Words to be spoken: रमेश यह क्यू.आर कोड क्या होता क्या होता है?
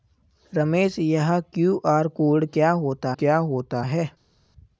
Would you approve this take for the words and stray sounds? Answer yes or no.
yes